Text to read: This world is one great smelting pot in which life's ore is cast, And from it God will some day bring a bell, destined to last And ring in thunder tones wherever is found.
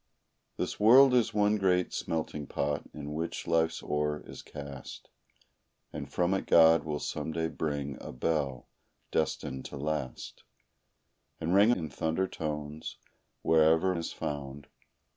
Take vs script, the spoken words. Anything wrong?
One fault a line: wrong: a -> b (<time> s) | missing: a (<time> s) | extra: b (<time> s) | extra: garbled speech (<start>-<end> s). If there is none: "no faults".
no faults